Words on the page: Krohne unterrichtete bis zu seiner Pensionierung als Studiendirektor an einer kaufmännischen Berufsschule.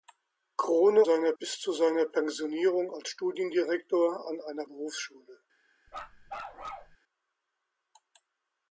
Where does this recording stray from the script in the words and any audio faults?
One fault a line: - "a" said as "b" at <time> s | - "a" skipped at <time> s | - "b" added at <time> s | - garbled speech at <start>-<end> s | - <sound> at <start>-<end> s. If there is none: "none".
- "unterrichtete" said as "seiner" at 1.0 s
- "kaufmännischen" skipped at 4.6 s
- bark at 5.9-7.0 s